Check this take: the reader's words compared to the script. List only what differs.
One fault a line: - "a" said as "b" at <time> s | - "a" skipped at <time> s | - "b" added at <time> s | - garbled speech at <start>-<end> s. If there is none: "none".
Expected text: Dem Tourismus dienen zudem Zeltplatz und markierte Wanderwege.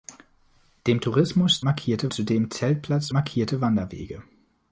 - "dienen" said as "markierte" at 1.6 s
- "und" skipped at 3.1 s